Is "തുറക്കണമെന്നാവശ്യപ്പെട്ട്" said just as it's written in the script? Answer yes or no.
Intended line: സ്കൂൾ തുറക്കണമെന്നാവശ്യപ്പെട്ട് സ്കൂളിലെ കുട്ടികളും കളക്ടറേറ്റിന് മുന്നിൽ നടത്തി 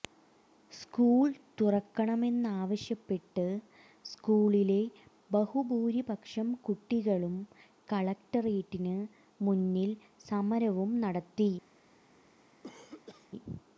yes